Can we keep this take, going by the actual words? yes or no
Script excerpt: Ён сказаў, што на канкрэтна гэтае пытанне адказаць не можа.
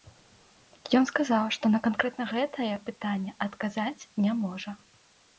yes